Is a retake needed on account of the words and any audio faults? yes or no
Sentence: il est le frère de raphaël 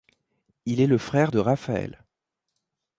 no